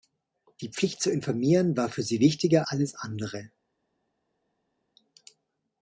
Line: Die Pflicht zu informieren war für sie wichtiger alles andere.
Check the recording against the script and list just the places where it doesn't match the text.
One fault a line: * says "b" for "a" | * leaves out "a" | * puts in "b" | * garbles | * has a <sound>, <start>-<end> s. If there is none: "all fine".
all fine